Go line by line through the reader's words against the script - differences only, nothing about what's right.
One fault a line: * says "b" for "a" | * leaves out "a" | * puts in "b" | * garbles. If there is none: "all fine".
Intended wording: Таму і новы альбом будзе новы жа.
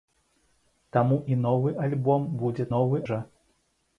all fine